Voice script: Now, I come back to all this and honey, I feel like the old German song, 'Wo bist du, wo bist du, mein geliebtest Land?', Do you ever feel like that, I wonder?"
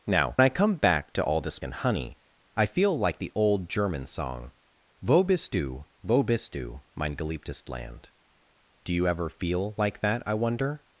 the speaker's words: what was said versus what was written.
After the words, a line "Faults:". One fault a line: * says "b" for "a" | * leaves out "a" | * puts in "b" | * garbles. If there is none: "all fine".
Now, I come back to all this and honey, I feel like the old German song, 'Wo bist du, wo bist du, mein geliebtest Land?', Do you ever feel like that, I wonder?"
Faults:
all fine